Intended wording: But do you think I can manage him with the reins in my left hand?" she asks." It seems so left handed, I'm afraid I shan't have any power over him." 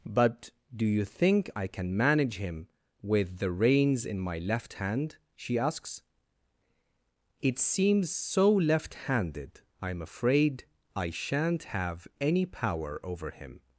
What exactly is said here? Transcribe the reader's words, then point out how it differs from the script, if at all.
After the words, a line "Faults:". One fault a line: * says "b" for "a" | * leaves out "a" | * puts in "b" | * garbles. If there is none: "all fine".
But do you think I can manage him with the reins in my left hand?" she asks." It seems so left handed, I'm afraid I shan't have any power over him."
Faults:
all fine